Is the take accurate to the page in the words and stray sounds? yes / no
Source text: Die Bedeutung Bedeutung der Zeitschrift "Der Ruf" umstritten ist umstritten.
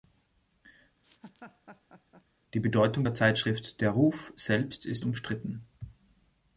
no